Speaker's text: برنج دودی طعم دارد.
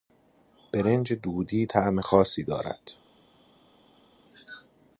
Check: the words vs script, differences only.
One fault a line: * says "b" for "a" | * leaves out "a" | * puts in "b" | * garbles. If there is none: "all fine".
* puts in "خاصی"